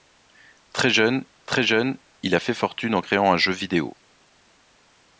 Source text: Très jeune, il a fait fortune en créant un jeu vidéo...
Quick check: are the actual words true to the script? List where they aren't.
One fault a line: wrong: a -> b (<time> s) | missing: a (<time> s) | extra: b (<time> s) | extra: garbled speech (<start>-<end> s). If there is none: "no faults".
extra: très jeune (1.5 s)